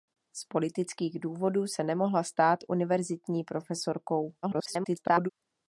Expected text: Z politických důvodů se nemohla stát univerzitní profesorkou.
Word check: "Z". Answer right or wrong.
right